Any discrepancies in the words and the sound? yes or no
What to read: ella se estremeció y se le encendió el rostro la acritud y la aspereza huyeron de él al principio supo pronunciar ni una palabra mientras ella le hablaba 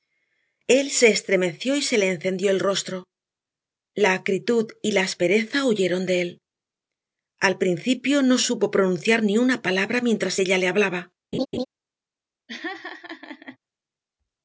yes